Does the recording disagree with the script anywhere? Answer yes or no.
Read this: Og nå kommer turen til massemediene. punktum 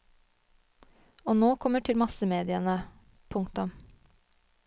yes